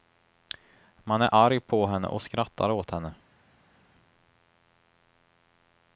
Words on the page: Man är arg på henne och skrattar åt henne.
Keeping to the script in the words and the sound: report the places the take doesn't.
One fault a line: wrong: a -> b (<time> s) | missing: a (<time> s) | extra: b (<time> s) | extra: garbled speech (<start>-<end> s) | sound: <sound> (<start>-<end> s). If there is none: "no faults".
no faults